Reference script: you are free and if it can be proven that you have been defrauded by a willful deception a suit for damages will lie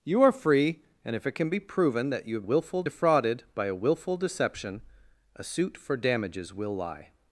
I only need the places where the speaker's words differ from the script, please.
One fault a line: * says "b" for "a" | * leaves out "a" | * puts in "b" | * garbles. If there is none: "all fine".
* says "willful" for "been"